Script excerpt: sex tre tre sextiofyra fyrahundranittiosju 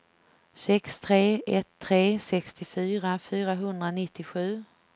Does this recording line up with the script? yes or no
no